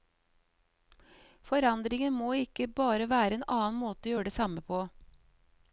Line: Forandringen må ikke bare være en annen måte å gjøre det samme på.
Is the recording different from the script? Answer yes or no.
no